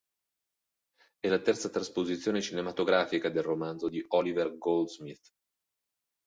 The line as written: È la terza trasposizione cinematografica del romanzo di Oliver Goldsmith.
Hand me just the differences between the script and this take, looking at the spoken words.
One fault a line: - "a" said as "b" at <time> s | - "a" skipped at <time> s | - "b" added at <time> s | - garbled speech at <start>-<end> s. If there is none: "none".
none